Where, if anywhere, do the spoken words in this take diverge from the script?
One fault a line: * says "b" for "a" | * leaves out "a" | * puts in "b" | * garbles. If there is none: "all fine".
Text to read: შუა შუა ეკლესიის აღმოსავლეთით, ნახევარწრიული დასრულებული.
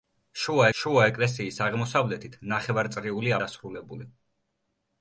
all fine